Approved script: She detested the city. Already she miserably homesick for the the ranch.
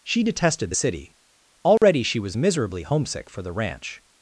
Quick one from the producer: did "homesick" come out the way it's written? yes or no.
yes